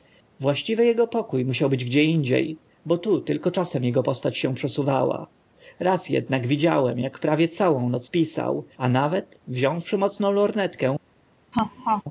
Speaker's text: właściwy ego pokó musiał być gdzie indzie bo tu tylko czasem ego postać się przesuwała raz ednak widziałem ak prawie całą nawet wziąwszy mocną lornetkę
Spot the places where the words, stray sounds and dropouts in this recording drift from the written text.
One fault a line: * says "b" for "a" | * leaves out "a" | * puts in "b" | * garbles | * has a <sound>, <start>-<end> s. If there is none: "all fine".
* puts in "noc pisał a"
* has a laugh, 11.5-12.0 s